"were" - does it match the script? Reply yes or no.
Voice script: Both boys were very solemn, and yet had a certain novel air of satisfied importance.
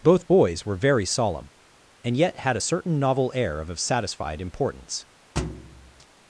yes